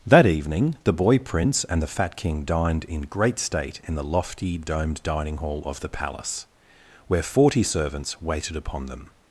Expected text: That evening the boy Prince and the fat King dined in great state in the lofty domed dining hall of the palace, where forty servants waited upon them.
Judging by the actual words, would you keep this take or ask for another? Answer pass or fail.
pass